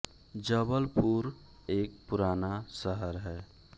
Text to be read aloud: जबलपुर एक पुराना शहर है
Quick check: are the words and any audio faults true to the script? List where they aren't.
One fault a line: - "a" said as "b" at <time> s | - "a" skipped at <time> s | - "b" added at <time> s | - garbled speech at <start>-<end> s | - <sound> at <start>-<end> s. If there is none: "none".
none